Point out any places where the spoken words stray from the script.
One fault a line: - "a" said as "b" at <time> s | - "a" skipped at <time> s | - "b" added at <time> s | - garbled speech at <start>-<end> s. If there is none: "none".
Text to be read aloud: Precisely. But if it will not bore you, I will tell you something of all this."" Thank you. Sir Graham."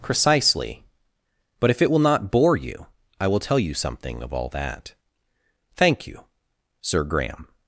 - "this" said as "that" at 4.5 s